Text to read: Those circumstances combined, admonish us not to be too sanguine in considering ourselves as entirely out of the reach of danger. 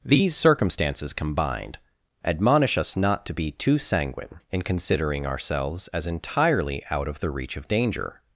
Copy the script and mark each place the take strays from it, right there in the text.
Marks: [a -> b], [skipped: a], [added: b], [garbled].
[Those -> These] circumstances combined, admonish us not to be too sanguine in considering ourselves as entirely out of the reach of danger.